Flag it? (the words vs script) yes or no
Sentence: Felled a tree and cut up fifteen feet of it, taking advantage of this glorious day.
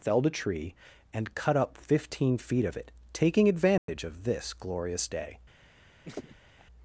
no